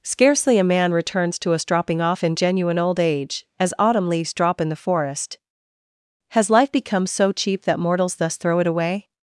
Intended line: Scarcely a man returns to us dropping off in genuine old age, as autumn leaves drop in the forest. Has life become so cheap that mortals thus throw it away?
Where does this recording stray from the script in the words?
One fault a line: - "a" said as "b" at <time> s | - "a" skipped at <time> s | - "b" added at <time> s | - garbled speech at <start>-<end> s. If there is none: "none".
none